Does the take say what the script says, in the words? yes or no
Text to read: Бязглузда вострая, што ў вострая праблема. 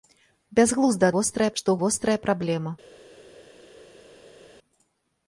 yes